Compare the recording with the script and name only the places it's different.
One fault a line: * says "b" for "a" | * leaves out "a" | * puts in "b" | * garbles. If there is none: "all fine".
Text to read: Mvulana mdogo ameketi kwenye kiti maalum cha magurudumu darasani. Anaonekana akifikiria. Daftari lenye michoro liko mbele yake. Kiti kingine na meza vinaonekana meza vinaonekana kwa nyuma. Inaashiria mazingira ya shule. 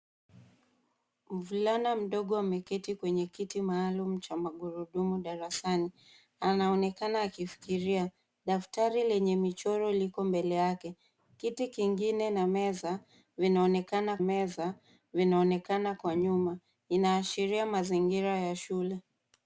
all fine